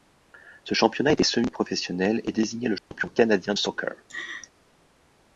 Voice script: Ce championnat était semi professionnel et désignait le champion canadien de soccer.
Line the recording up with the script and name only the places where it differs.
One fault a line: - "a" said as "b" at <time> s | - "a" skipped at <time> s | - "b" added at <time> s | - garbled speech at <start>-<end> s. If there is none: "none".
- "de" skipped at 3.5 s